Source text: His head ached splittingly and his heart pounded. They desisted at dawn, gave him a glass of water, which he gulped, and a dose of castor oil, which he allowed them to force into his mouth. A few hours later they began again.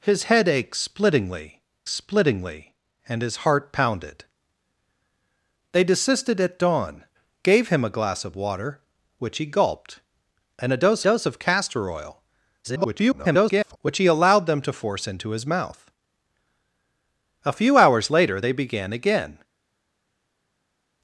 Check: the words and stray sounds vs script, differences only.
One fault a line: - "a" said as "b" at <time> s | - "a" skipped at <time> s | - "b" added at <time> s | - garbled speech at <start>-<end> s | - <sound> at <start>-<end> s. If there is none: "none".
- "splittingly" added at 1.9 s
- "dose" added at 11.0 s
- garbled speech at 12.6-13.8 s